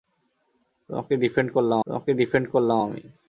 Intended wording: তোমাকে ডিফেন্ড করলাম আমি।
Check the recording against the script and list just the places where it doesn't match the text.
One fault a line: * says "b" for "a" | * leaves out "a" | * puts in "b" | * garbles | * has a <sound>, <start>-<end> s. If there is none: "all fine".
* puts in "তোমাকে ডিফেন্ড করলাম"